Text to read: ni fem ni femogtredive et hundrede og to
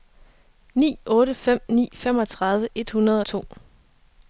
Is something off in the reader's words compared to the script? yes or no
yes